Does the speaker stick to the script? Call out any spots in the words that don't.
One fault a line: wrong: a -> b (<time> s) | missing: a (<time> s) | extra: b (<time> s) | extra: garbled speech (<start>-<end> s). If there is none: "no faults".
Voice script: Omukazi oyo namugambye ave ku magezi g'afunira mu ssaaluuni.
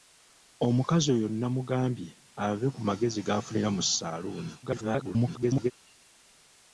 extra: garbled speech (4.6-5.7 s)